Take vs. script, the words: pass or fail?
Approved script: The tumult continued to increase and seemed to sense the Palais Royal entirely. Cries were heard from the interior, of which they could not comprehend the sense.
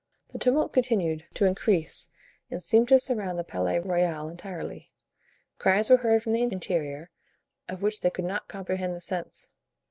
fail